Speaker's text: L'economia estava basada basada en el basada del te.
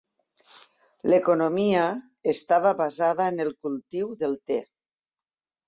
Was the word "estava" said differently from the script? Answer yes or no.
no